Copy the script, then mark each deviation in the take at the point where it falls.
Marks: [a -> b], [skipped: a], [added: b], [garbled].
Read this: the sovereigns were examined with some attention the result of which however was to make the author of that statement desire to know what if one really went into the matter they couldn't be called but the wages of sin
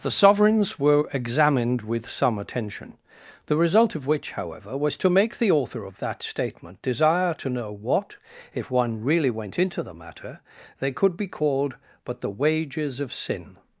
the sovereigns were examined with some attention the result of which however was to make the author of that statement desire to know what if one really went into the matter they [couldn't -> could] be called but the wages of sin